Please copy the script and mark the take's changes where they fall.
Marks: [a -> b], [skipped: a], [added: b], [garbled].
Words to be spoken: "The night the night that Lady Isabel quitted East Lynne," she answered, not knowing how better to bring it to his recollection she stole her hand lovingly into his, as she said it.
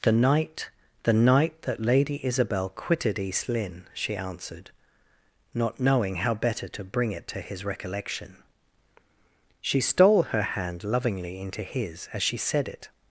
"The night the night that Lady Isabel quitted East Lynne," she answered, not knowing how better to bring it to his recollection she stole her hand lovingly into his, as she said it.